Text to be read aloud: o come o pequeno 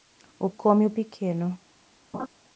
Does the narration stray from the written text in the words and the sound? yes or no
yes